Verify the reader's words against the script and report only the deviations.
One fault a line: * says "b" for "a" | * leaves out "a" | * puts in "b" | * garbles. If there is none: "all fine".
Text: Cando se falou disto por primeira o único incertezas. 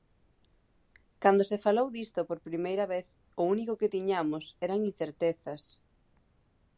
* puts in "vez"
* puts in "que tiñamos eran"